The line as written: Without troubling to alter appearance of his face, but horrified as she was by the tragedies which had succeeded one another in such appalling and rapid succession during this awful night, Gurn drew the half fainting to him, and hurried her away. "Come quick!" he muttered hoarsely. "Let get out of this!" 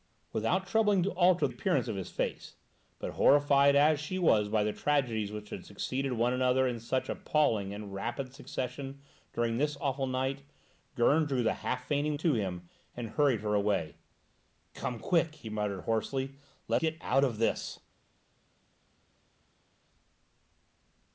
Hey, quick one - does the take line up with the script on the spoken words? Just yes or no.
yes